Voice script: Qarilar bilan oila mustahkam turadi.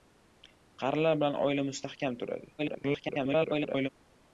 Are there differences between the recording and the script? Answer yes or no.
yes